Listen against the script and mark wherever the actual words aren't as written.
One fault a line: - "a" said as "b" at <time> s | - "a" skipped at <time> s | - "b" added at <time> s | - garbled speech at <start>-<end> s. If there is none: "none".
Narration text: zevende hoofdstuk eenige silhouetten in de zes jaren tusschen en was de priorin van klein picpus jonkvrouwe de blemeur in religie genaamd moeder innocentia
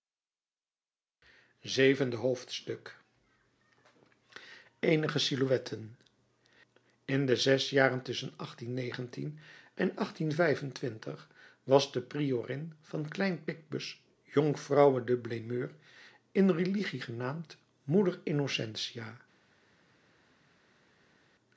none